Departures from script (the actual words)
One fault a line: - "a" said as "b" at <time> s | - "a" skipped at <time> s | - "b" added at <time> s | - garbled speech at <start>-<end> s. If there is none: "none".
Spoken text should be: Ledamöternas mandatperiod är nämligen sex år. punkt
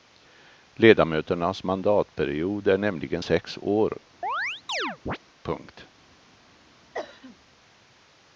none